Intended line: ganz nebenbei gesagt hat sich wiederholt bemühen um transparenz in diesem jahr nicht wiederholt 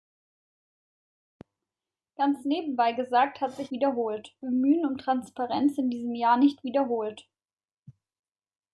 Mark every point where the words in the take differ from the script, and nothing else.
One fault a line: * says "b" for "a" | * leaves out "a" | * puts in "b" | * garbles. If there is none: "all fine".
all fine